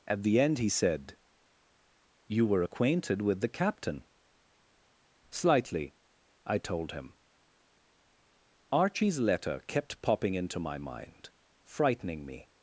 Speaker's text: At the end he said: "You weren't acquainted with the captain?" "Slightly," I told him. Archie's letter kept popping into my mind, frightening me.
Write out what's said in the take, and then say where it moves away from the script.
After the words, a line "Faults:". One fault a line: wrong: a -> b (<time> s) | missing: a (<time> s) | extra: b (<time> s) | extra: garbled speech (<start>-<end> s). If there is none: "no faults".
At the end he said: "You were acquainted with the captain?" "Slightly," I told him. Archie's letter kept popping into my mind, frightening me.
Faults:
wrong: weren't -> were (2.5 s)